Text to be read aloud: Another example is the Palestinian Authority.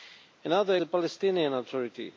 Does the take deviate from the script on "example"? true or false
true